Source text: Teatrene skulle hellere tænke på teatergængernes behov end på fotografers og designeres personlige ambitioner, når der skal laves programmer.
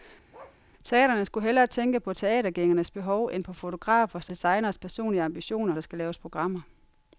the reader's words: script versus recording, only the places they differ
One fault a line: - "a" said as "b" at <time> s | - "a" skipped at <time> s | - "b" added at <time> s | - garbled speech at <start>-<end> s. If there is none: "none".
- "og" skipped at 4.3 s
- "når" skipped at 5.8 s